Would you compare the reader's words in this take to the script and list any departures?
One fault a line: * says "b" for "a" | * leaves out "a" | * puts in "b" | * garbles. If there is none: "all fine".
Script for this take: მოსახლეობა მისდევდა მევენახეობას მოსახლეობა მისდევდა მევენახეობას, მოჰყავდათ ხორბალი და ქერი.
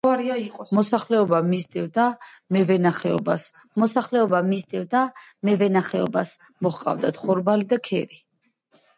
all fine